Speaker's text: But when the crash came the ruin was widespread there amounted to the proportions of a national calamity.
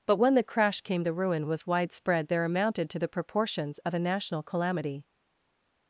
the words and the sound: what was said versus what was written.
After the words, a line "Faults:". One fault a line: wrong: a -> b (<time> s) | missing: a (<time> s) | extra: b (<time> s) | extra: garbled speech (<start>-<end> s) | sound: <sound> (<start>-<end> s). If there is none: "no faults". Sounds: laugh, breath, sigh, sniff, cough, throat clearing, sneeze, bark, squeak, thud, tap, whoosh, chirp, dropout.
But when the crash came the ruin was widespread there amounted to the proportions of a national calamity.
Faults:
no faults